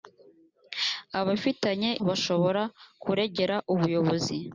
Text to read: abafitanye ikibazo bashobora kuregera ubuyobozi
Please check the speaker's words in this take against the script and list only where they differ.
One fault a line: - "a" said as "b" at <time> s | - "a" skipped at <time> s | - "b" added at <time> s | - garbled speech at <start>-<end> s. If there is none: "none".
- "ikibazo" skipped at 1.9 s